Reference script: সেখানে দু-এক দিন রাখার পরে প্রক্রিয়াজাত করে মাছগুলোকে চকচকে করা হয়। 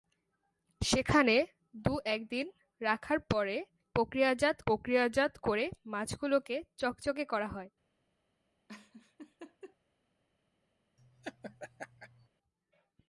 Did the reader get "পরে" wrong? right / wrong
right